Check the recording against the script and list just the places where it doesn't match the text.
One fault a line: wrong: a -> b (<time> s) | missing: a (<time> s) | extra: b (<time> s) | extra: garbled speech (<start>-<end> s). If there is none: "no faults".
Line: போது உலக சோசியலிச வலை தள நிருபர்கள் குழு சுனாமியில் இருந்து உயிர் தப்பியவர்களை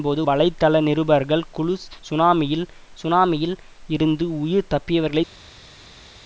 missing: உலக சோசியலிச (0.2 s)
extra: சுனாமியில் (3.0 s)